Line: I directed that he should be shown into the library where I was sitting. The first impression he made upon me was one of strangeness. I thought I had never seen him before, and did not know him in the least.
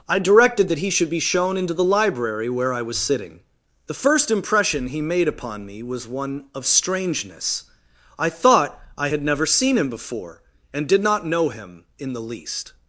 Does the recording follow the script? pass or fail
pass